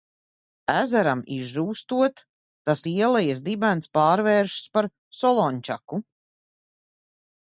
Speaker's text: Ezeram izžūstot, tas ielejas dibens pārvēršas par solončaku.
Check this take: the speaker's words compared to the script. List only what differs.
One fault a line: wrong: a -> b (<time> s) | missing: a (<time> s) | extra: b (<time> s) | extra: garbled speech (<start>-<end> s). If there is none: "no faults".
no faults